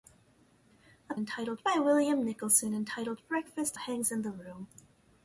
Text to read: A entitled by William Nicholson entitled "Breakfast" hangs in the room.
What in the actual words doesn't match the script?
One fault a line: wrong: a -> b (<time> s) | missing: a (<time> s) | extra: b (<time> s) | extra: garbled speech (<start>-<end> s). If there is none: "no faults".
no faults